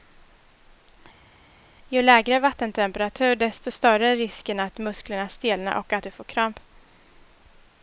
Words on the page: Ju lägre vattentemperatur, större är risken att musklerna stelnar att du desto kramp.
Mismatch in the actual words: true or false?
true